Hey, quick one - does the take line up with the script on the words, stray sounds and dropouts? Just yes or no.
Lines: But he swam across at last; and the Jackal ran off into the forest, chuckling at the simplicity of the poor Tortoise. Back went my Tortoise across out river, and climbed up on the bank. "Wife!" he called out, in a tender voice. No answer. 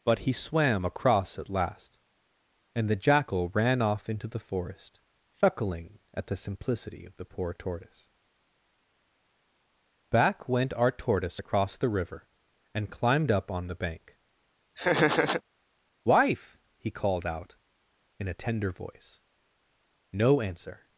no